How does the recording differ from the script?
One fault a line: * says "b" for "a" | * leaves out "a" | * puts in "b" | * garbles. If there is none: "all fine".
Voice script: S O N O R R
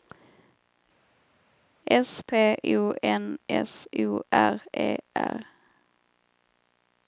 * puts in "P"
* puts in "S"
* puts in "E"